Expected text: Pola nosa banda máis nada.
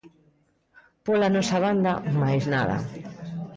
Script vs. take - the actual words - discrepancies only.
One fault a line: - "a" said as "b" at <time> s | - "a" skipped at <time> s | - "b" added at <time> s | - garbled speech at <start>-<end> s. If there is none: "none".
none